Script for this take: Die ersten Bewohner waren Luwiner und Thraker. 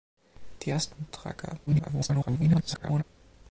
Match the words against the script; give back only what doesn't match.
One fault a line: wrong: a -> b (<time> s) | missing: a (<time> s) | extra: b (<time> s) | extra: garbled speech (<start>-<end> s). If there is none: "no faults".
missing: Bewohner waren Luwiner (1.0 s)
extra: garbled speech (1.7-3.0 s)